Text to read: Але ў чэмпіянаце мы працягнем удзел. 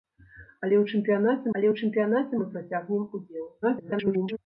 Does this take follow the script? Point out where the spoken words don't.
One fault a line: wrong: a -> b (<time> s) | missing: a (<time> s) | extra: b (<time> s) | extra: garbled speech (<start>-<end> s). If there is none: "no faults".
extra: але ў чэмпіянаце (1.5 s)
extra: garbled speech (3.6-4.4 s)